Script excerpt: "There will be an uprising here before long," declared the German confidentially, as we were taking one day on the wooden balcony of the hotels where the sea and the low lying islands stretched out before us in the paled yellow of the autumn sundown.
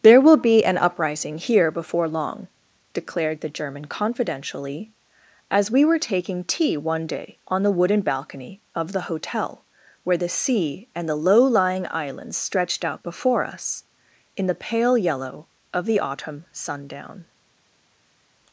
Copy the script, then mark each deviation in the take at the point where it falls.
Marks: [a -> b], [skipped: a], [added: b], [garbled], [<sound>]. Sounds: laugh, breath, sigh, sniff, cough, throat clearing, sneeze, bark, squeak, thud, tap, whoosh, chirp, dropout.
"There will be an uprising here before long," declared the German confidentially, as we were taking [added: tea] one day on the wooden balcony of the [hotels -> hotel] where the sea and the low lying islands stretched out before us in the [paled -> pale] yellow of the autumn sundown.